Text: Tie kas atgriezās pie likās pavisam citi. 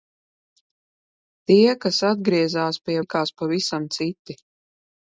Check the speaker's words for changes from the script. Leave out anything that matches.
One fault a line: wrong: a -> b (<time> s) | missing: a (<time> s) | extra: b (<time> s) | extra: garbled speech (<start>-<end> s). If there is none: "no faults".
no faults